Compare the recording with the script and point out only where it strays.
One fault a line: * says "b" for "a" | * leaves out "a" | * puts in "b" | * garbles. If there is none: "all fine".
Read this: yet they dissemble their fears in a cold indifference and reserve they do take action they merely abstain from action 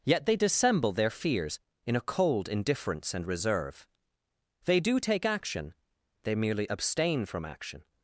all fine